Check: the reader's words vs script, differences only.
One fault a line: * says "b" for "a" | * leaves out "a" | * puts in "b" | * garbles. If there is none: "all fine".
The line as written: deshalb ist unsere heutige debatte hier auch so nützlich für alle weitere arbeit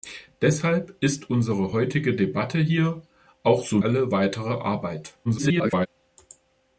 * leaves out "nützlich für"
* garbles